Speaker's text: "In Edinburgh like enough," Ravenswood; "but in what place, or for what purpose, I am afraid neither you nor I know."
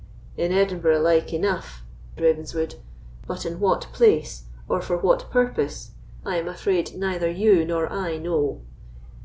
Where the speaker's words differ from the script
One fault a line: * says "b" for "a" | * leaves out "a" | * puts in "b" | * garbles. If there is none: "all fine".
all fine